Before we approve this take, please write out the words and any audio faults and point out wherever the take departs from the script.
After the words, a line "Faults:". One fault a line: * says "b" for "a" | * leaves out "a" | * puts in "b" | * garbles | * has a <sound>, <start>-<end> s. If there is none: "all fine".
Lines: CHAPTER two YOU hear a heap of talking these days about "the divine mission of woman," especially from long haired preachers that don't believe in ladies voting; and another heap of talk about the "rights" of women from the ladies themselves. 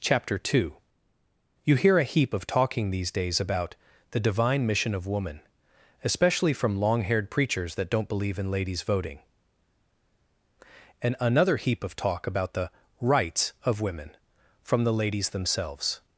CHAPTER two YOU hear a heap of talking these days about "the divine mission of woman," especially from long haired preachers that don't believe in ladies voting; and another heap of talk about the "rights" of women from the ladies themselves.
Faults:
all fine